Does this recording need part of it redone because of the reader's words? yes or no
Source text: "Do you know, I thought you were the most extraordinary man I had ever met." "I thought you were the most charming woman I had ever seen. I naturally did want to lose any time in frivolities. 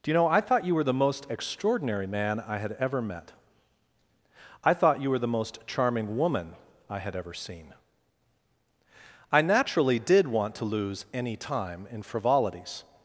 no